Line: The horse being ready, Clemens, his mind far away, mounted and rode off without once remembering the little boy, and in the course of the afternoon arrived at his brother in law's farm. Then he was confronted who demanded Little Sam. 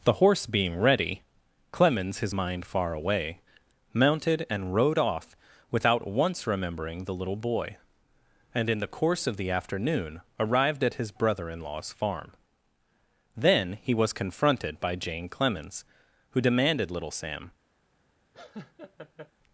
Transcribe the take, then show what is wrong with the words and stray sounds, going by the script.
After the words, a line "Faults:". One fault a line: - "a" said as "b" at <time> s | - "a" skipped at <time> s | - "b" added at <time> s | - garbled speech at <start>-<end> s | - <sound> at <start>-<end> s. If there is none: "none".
The horse being ready, Clemens, his mind far away, mounted and rode off without once remembering the little boy, and in the course of the afternoon arrived at his brother in law's farm. Then he was confronted by Jane Clemens, who demanded Little Sam.
Faults:
- "by Jane Clemens" added at 14.8 s
- laugh at 18.3-19.3 s